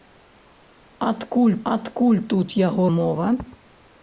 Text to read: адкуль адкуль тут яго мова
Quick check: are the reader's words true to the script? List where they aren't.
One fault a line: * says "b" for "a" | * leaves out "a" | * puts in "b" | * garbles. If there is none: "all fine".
all fine